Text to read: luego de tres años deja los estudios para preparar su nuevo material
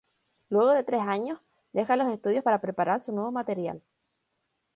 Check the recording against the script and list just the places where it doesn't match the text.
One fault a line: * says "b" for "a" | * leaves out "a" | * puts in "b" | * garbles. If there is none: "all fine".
all fine